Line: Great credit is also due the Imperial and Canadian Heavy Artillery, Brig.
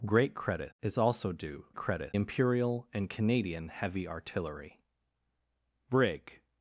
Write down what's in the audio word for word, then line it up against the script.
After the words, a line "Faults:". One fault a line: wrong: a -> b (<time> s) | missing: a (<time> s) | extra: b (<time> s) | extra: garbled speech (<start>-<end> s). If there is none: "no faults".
Great credit is also due credit Imperial and Canadian Heavy Artillery, Brig.
Faults:
wrong: the -> credit (1.7 s)